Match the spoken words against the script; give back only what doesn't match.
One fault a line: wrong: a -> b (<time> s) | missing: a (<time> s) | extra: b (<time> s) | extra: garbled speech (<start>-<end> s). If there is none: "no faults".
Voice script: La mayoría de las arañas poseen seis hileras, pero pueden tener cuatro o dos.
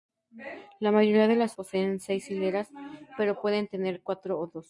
missing: arañas (1.6 s)